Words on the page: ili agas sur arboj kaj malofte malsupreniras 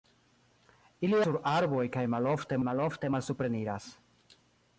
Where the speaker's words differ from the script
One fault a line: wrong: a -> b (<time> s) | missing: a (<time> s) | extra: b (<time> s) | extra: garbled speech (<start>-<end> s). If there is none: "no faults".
missing: agas (1.2 s)
extra: malofte (2.7 s)